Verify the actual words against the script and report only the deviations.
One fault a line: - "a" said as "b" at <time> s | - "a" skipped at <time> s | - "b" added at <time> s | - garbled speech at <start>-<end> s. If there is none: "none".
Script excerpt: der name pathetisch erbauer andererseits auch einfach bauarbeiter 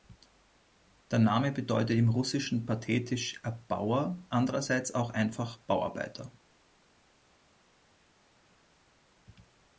- "bedeutet im russischen" added at 1.5 s